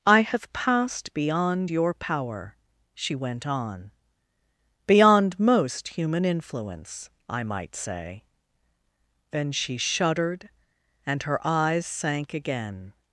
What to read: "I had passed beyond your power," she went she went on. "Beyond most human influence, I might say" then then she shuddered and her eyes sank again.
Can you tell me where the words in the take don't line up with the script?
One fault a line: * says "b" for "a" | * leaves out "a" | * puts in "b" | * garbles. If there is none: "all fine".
* says "have" for "had"
* leaves out "she went"
* leaves out "then"